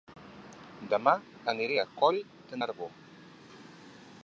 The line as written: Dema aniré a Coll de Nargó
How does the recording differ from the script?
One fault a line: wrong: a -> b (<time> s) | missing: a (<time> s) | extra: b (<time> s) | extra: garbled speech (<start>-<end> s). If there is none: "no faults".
no faults